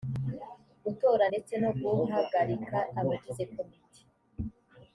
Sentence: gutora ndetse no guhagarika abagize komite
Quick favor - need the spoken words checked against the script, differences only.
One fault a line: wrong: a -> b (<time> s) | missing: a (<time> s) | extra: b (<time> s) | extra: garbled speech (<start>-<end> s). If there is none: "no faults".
no faults